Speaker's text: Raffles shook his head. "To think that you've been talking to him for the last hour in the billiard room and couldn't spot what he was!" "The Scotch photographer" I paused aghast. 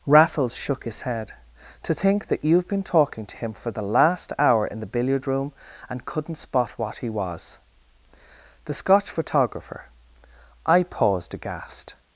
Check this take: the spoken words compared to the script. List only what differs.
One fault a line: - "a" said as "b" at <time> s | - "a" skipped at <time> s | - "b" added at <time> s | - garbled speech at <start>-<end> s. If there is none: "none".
none